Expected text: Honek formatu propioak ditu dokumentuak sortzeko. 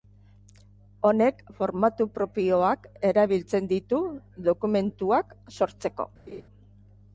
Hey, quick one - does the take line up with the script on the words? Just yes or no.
no